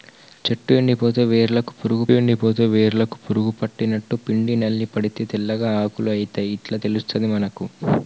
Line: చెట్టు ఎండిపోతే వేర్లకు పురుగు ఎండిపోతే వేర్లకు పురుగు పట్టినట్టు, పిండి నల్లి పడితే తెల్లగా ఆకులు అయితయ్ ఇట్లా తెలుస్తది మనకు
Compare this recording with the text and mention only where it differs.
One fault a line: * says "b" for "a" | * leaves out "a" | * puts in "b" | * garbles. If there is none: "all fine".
all fine